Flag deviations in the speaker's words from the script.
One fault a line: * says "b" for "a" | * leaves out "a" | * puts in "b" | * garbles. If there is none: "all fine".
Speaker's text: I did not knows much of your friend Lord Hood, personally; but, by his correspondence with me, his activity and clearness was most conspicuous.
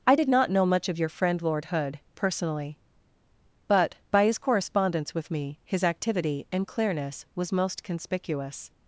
* says "know" for "knows"